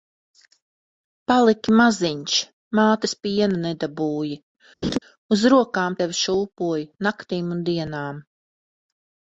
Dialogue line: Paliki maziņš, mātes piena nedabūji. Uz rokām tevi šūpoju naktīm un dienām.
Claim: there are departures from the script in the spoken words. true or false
false